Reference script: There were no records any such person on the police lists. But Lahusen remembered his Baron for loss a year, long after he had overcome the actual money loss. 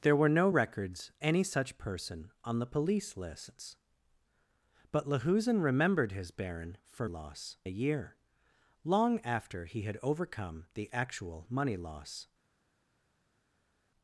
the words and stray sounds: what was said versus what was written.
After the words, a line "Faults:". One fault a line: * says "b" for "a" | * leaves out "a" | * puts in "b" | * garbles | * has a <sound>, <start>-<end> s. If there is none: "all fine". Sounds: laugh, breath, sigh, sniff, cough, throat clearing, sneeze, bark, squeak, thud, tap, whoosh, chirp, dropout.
There were no records any such person on the police lists. But Lahusen remembered his Baron for loss a year, long after he had overcome the actual money loss.
Faults:
all fine